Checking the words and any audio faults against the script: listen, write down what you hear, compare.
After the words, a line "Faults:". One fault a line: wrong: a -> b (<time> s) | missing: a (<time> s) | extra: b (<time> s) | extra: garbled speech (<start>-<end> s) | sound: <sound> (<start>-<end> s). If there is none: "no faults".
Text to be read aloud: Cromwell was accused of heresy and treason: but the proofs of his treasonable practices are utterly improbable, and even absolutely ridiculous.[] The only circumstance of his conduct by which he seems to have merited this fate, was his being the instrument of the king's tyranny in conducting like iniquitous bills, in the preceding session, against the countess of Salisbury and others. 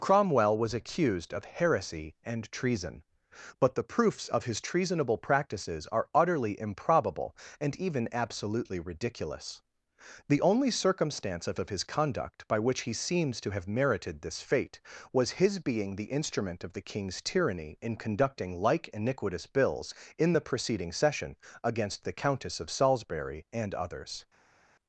Cromwell was accused of heresy and treason: but the proofs of his treasonable practices are utterly improbable, and even absolutely ridiculous.[] The only circumstance of of his conduct by which he seems to have merited this fate, was his being the instrument of the king's tyranny in conducting like iniquitous bills, in the preceding session, against the countess of Salisbury and others.
Faults:
extra: of (11.6 s)